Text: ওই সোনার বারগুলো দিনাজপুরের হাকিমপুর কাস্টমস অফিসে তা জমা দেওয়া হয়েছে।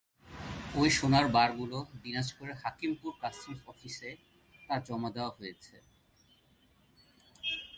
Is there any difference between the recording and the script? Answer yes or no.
no